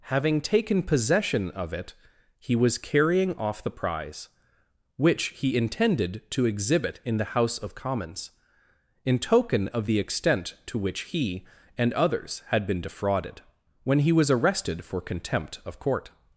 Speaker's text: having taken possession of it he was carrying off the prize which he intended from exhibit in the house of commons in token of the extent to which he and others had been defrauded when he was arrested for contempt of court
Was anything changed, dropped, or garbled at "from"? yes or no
yes